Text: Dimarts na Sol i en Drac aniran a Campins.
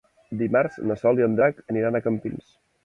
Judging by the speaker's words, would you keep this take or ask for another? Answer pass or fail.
pass